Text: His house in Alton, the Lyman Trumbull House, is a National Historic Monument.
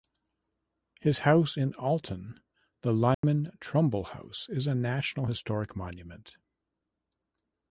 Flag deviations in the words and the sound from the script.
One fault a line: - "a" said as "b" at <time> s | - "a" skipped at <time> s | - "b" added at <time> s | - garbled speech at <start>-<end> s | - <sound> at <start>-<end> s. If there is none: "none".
- dropout at 3.1-3.2 s